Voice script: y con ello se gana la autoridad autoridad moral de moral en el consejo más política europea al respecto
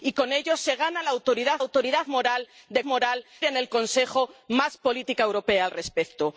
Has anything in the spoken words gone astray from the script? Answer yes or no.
no